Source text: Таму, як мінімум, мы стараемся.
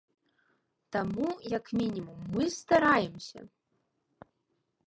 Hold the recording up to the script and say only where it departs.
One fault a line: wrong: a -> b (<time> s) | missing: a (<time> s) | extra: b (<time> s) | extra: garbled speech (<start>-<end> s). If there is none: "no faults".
no faults